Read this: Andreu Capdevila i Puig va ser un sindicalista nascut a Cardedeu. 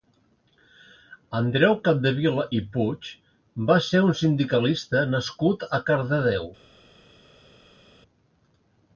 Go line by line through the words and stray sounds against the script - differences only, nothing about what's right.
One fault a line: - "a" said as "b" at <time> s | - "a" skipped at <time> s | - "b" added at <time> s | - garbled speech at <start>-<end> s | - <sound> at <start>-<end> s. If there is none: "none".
none